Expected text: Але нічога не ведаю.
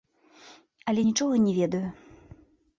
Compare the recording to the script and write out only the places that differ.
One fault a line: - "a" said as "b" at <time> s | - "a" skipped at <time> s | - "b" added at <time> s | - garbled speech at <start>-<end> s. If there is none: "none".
none